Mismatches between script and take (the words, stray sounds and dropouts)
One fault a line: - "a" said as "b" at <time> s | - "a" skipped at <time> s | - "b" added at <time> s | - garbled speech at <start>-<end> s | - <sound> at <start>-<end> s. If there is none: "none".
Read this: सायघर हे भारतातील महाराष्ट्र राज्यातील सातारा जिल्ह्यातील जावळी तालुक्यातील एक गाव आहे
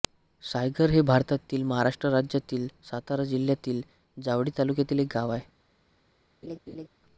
- laugh at 6.4-6.9 s